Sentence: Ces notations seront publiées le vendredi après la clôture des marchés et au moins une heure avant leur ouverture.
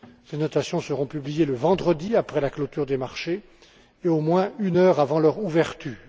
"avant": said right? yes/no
yes